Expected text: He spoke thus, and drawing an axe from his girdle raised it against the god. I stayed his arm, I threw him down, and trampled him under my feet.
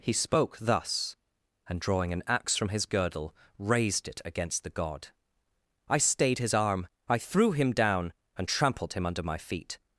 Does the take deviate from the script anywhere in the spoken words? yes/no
no